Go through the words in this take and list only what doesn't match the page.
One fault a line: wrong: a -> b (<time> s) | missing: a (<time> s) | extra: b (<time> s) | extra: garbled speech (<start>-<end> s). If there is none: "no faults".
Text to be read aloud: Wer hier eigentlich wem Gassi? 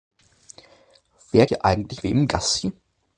no faults